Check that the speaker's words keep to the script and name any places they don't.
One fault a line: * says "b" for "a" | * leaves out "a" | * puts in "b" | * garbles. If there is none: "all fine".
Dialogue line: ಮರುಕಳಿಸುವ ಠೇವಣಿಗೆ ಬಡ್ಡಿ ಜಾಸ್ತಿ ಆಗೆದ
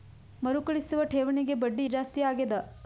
all fine